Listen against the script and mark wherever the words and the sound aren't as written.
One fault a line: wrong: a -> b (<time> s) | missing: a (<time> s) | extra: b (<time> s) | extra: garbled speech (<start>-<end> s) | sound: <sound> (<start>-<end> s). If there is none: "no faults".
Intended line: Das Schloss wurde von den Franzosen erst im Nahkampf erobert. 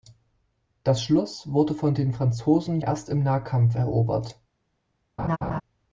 sound: laugh (5.2-5.6 s)